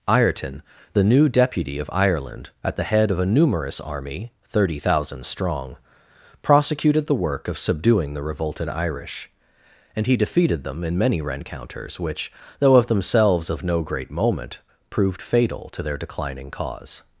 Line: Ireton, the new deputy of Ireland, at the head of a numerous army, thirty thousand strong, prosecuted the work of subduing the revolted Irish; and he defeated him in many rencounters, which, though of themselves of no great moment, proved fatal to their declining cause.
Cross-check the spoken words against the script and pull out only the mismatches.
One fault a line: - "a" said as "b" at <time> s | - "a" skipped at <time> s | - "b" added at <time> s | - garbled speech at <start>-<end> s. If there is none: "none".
- "him" said as "them" at 10.6 s